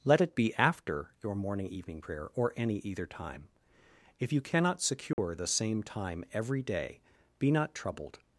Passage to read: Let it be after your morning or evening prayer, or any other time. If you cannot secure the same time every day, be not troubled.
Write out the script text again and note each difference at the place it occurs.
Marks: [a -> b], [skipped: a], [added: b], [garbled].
Let it be after your morning [skipped: or] evening prayer, or any [other -> either] time. If you cannot secure the same time every day, be not troubled.